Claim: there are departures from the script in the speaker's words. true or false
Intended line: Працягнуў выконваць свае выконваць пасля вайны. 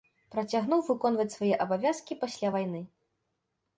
true